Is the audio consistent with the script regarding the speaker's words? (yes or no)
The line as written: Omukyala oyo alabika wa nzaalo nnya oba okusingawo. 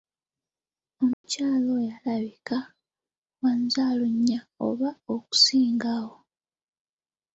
yes